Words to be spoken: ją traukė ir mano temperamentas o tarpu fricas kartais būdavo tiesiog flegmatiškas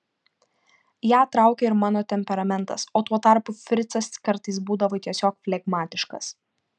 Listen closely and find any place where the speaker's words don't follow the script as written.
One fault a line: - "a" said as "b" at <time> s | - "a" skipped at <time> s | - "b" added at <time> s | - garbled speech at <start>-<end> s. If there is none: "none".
- "tuo" added at 3.1 s